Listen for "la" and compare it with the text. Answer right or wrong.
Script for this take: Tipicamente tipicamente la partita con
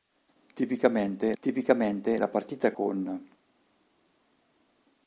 right